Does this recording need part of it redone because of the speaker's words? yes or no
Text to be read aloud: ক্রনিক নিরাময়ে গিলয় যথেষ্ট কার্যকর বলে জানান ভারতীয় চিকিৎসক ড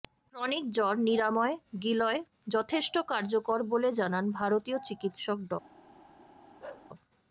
yes